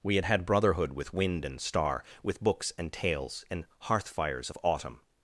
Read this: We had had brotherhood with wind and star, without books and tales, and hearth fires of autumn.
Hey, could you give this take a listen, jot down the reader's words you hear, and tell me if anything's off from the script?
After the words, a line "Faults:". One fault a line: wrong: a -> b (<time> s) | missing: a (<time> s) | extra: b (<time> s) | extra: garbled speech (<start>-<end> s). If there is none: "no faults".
We had had brotherhood with wind and star, with books and tales, and hearth fires of autumn.
Faults:
wrong: without -> with (2.2 s)